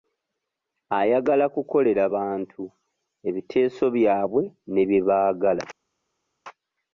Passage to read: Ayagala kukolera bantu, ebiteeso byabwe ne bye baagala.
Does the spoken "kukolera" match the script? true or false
true